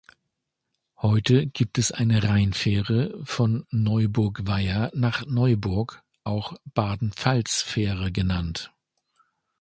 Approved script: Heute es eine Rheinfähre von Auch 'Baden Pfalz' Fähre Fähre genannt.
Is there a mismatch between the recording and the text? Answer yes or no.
yes